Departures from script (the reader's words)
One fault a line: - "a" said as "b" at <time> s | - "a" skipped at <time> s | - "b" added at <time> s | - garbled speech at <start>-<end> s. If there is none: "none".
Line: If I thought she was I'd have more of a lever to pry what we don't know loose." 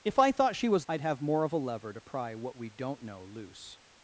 none